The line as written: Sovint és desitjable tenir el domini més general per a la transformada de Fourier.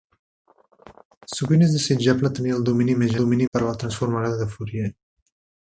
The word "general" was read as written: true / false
false